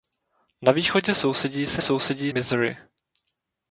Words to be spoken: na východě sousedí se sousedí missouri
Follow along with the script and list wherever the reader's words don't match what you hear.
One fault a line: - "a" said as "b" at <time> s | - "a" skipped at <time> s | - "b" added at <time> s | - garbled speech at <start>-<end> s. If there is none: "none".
none